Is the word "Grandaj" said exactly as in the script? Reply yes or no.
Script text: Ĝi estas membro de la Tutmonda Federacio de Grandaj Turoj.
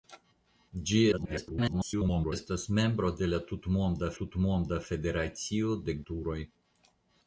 no